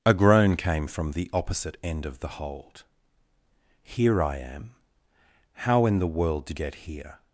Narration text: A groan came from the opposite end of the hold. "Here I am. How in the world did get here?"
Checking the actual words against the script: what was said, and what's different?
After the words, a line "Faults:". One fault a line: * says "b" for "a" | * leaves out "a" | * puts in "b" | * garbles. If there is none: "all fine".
A groan came from the opposite end of the hold. "Here I am. How in the world did get here?"
Faults:
all fine